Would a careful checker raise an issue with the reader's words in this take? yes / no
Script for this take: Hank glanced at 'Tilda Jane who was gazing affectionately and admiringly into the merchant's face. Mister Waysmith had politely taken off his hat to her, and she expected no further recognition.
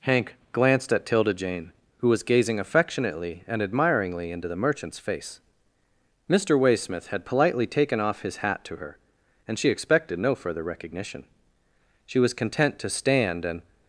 yes